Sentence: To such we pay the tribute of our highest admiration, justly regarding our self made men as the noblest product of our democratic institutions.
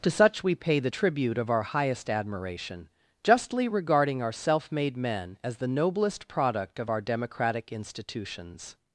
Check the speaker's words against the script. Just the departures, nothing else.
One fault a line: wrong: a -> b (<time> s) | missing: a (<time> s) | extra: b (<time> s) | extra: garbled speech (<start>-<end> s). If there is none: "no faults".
no faults